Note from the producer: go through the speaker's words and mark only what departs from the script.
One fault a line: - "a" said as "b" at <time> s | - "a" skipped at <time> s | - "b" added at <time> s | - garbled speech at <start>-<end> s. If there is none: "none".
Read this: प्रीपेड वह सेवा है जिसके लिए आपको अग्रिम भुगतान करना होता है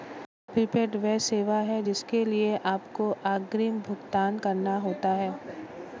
none